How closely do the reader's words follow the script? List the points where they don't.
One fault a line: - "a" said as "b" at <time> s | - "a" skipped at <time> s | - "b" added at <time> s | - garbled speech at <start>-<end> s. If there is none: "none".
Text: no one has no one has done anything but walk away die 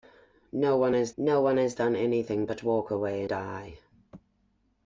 none